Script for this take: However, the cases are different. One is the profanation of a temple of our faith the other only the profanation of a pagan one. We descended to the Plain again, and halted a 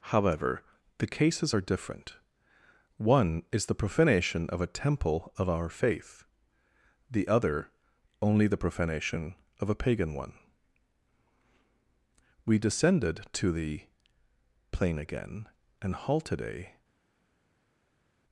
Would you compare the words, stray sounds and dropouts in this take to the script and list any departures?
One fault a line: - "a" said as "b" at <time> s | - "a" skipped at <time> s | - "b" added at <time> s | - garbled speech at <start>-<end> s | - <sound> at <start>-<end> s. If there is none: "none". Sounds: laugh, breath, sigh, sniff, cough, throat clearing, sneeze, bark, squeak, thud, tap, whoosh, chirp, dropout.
none